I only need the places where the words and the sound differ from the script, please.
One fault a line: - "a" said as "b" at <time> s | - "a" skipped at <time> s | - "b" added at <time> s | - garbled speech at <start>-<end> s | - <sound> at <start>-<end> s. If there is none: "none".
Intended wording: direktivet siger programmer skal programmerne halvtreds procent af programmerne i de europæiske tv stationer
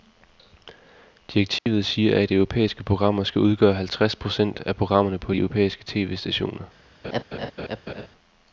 - dropout at 1.6-1.7 s
- "at europæiske" added at 2.2 s
- "programmerne" said as "udgøre" at 3.4 s
- "i" said as "på" at 5.2 s
- laugh at 7.0-8.1 s